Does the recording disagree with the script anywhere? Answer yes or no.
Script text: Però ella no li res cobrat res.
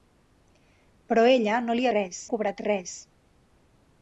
no